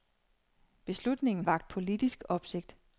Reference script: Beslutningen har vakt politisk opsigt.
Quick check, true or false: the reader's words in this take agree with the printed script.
false